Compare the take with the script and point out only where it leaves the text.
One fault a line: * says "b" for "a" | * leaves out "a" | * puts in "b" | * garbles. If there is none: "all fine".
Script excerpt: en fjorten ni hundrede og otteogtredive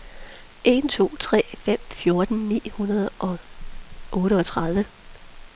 * puts in "to tre fem"